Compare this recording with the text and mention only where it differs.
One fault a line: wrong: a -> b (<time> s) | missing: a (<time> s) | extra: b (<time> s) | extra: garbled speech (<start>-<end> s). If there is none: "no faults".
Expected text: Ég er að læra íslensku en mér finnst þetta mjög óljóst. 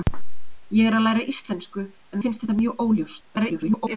missing: mér (2.2 s)
extra: garbled speech (3.2-4.0 s)